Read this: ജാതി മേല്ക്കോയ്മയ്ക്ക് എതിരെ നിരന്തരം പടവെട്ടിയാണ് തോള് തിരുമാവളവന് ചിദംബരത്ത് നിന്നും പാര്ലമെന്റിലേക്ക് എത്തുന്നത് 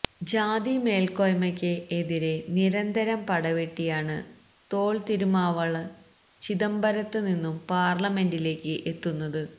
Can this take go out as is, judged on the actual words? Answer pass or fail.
pass